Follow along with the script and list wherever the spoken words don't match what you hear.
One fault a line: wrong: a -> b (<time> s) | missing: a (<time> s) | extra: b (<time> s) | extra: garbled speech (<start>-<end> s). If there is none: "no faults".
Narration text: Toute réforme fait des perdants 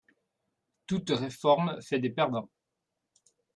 no faults